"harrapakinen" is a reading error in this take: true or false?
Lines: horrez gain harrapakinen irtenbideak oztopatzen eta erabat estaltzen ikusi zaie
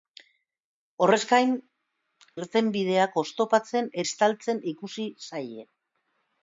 true